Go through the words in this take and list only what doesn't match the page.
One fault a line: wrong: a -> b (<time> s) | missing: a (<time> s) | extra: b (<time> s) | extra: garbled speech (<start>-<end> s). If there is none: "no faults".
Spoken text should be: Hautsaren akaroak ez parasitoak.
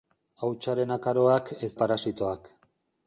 no faults